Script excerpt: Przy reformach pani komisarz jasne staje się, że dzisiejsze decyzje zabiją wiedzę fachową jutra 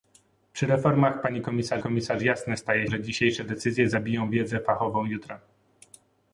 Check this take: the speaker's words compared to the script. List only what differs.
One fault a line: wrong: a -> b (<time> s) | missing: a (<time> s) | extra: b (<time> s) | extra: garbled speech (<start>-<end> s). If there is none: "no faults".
extra: komisarz (1.8 s)
missing: się (2.9 s)